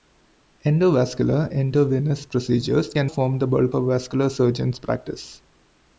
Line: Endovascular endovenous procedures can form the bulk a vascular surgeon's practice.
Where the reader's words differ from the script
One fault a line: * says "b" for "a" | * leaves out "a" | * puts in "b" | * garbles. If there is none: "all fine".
all fine